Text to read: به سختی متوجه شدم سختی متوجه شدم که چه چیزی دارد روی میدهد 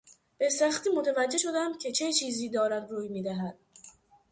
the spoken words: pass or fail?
fail